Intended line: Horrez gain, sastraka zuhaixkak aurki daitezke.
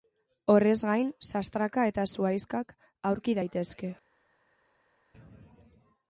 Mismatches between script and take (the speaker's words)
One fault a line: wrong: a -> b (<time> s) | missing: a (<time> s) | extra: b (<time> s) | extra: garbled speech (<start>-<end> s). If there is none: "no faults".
extra: eta (1.9 s)